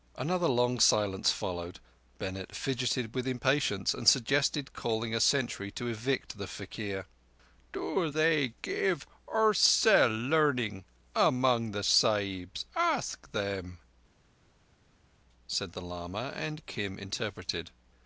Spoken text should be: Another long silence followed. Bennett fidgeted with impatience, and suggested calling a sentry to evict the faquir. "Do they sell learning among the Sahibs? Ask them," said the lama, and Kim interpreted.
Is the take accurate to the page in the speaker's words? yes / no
no